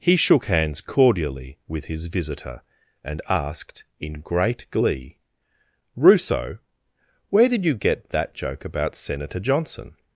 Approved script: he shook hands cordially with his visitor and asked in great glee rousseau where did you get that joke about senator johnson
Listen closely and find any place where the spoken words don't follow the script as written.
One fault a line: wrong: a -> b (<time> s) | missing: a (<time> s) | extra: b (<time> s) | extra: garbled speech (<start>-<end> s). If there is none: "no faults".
no faults